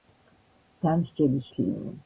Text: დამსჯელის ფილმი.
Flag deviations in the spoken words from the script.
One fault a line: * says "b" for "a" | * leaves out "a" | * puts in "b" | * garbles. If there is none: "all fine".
all fine